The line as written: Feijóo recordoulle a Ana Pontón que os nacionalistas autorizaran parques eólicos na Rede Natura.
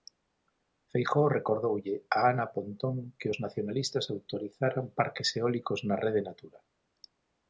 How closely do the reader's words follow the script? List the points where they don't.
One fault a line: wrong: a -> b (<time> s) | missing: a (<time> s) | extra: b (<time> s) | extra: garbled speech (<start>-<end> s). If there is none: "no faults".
no faults